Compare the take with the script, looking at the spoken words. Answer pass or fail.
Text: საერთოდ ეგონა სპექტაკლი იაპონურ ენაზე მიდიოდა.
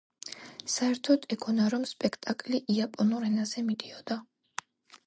fail